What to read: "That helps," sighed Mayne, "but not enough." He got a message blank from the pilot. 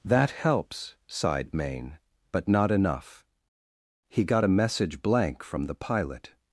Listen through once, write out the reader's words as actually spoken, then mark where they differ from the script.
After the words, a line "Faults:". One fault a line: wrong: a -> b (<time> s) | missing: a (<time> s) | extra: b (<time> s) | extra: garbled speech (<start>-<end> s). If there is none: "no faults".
"That helps," sighed Mayne, "but not enough." He got a message blank from the pilot.
Faults:
no faults